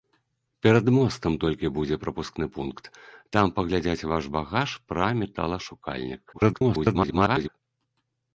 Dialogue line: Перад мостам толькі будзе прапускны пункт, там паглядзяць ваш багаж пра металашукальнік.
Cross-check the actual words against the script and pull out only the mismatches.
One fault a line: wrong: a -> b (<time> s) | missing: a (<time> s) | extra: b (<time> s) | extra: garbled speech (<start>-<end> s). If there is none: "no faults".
extra: garbled speech (6.3-7.5 s)